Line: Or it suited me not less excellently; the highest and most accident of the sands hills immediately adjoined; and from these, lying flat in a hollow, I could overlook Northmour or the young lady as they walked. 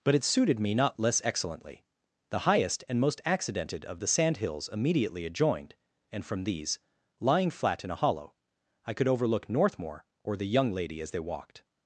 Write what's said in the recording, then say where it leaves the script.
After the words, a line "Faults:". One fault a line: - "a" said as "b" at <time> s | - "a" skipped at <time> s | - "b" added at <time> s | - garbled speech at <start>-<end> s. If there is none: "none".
But it suited me not less excellently; the highest and most accidented of the sand hills immediately adjoined; and from these, lying flat in a hollow, I could overlook Northmour or the young lady as they walked.
Faults:
- "Or" said as "But" at 0.0 s
- "accident" said as "accidented" at 3.2 s
- "sands" said as "sand" at 4.1 s